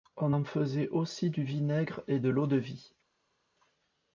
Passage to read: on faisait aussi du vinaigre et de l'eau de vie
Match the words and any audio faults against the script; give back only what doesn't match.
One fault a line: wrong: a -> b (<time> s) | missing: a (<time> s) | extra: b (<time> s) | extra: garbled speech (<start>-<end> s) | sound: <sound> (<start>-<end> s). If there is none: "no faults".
extra: en (0.3 s)